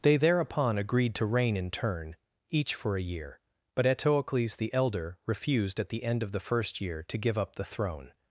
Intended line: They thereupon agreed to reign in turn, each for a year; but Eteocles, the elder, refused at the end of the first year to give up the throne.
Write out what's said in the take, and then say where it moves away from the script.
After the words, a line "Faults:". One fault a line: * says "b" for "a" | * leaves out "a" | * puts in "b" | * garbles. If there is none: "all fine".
They thereupon agreed to reign in turn, each for a year; but Eteocles, the elder, refused at the end of the first year to give up the throne.
Faults:
all fine